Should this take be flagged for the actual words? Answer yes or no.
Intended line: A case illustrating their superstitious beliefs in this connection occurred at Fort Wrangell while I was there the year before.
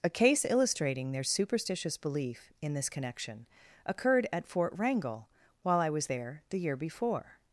yes